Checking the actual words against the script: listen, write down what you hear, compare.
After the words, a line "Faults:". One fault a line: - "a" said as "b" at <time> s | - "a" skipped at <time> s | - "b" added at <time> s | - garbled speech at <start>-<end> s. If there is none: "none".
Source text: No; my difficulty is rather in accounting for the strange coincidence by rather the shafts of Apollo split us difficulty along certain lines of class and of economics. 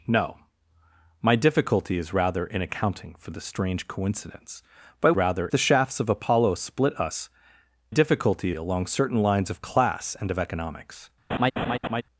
No; my difficulty is rather in accounting for the strange coincidence by rather the shafts of Apollo split us difficulty along certain lines of class and of economics.
Faults:
none